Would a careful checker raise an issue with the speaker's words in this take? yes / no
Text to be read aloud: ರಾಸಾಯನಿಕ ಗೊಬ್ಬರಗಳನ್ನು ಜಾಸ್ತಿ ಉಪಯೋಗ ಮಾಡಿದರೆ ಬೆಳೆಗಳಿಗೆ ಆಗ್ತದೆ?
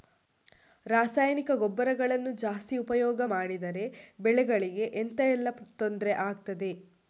yes